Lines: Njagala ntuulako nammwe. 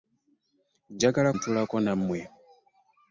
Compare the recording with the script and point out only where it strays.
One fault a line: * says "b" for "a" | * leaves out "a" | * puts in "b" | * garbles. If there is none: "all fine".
all fine